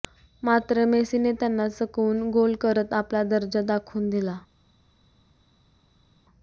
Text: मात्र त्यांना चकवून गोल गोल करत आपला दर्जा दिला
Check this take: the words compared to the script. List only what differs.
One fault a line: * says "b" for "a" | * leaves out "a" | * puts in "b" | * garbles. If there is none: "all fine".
* puts in "मेसीने"
* leaves out "गोल"
* puts in "दाखवून"